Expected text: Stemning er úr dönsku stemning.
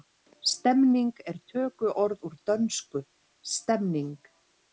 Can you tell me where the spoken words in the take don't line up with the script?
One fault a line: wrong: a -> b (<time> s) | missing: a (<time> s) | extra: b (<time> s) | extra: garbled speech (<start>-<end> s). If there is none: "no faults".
extra: tökuorð (1.5 s)